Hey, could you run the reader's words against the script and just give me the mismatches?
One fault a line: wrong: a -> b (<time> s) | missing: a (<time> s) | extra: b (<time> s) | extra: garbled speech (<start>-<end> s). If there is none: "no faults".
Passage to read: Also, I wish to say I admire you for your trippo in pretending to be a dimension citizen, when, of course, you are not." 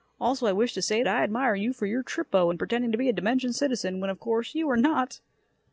no faults